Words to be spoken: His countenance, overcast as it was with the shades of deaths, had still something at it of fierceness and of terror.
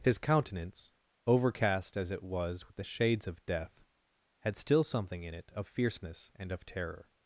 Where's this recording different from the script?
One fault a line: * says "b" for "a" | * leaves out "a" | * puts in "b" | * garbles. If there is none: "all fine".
* says "death" for "deaths"
* says "in" for "at"